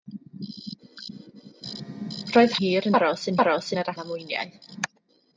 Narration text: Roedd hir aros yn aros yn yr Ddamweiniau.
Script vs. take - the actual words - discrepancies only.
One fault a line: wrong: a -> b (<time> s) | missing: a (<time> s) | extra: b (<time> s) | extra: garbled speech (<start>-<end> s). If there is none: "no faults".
no faults